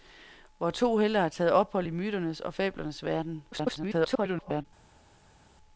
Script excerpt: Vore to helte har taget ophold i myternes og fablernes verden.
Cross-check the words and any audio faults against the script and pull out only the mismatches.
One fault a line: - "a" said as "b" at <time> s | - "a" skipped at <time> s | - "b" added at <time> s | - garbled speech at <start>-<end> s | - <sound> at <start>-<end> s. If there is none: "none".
- garbled speech at 3.5-4.7 s